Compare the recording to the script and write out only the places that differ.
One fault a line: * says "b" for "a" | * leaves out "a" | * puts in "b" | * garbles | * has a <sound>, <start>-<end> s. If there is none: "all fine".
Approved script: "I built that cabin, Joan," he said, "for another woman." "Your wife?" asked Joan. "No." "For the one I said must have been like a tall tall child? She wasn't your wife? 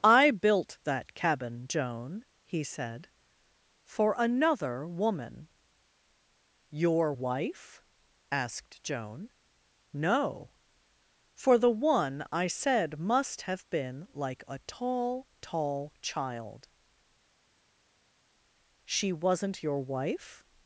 all fine